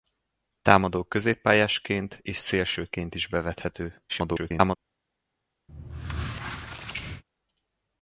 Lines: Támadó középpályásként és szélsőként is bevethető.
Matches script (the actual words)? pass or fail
fail